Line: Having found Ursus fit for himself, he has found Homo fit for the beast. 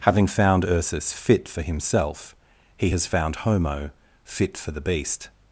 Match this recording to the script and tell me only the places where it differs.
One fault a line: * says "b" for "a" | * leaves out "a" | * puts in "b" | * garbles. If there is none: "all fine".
all fine